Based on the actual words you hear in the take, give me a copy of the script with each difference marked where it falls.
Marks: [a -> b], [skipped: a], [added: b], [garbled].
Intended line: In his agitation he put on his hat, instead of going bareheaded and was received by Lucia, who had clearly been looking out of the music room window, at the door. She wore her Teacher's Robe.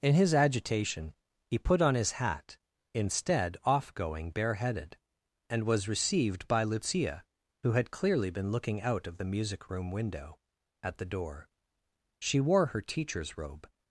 In his agitation he put on his hat, instead [of -> off] going bareheaded and was received by Lucia, who had clearly been looking out of the music room window, at the door. She wore her Teacher's Robe.